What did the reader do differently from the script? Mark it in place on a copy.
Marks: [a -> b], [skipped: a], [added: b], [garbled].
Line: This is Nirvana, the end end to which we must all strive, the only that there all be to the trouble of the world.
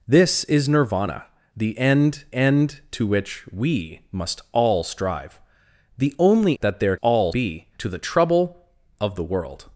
This is Nirvana, the end end to which we must all strive, the only that there all be to the trouble of the world.